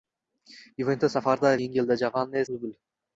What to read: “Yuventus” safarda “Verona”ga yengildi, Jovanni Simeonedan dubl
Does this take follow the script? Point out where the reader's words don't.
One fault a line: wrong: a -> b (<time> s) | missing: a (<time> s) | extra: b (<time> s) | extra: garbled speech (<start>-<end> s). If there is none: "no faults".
missing: Verona”ga (1.5 s)
missing: Simeonedan (2.4 s)